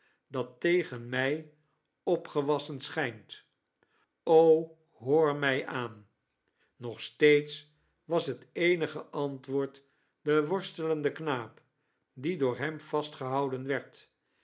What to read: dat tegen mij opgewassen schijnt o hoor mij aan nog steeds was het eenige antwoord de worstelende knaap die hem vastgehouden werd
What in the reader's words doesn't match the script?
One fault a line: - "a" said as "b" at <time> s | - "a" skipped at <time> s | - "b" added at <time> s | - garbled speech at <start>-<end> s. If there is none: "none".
- "door" added at 12.4 s